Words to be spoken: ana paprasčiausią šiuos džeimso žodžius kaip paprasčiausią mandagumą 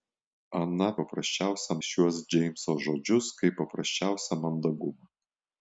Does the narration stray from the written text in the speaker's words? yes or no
no